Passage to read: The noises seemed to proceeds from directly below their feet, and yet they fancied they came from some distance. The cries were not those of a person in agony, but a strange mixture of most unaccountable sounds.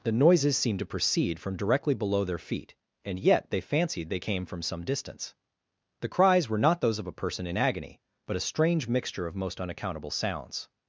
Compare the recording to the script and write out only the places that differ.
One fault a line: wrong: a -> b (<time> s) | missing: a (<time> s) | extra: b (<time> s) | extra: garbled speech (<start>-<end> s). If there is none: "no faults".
wrong: proceeds -> proceed (0.8 s)